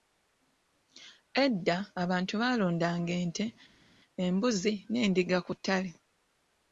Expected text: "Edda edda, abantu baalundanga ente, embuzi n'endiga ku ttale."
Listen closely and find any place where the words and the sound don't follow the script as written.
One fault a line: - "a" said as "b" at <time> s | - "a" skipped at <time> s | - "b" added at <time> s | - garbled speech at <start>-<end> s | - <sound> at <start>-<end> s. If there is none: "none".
- "edda" skipped at 1.8 s